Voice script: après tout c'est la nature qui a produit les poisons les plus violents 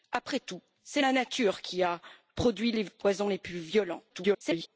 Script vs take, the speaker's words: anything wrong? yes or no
yes